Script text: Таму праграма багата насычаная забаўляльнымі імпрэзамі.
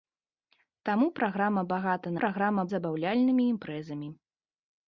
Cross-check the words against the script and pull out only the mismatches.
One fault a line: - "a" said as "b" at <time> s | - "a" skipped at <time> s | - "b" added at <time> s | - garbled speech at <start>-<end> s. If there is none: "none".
- "насычаная" said as "праграма" at 2.2 s